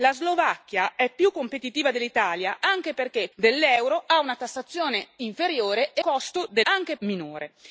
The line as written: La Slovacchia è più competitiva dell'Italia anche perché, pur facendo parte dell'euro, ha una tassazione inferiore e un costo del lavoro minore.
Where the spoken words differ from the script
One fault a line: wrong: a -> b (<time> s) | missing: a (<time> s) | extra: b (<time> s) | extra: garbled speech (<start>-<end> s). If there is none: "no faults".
missing: pur facendo parte (3.3 s)
missing: un (6.0 s)
wrong: lavoro -> anche (6.6 s)